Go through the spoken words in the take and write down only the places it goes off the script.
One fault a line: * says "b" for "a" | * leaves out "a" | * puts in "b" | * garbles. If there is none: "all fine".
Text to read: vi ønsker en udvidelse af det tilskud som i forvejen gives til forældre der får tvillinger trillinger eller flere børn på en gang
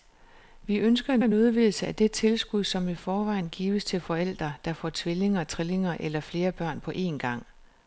* puts in "en"